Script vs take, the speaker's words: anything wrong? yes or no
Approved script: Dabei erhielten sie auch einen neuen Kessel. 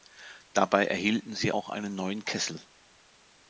no